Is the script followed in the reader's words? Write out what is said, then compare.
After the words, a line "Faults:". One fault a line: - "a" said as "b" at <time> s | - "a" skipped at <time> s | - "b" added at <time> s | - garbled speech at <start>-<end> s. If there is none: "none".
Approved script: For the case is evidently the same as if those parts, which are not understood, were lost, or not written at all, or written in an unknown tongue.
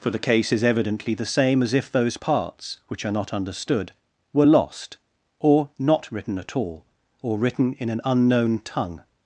For the case is evidently the same as if those parts, which are not understood, were lost, or not written at all, or written in an unknown tongue.
Faults:
none